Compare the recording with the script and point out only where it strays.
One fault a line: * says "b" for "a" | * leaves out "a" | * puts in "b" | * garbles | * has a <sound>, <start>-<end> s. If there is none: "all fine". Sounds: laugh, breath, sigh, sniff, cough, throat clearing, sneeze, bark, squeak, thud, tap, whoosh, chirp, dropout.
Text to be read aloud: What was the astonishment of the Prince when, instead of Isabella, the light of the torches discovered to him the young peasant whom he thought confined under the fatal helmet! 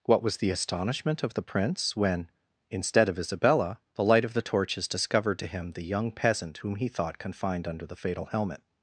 all fine